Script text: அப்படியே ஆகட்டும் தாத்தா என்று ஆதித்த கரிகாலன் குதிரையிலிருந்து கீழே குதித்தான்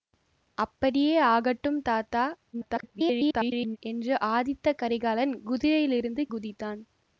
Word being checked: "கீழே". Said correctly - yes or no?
no